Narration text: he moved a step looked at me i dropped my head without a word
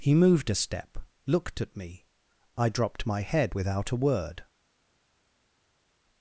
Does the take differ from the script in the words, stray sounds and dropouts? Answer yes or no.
no